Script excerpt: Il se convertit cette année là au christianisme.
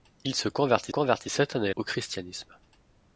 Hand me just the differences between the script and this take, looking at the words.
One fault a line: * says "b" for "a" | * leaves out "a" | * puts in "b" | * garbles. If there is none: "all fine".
* puts in "convertit"
* leaves out "là"